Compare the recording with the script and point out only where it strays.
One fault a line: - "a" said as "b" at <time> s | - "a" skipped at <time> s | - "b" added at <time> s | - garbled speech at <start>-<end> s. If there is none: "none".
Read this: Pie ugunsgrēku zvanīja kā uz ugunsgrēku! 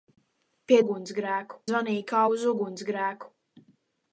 none